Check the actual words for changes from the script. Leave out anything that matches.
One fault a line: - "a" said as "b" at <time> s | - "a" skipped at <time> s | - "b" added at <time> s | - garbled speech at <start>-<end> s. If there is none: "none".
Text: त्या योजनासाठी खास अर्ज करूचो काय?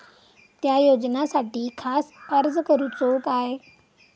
none